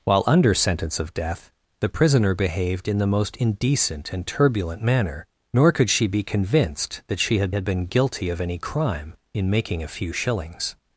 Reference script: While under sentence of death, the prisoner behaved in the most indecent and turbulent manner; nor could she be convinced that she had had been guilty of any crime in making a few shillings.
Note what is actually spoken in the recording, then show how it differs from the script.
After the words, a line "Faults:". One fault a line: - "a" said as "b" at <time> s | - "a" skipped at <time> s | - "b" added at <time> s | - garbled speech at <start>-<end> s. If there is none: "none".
While under sentence of death, the prisoner behaved in the most indecent and turbulent manner; nor could she be convinced that she had had been guilty of any crime in making a few shillings.
Faults:
none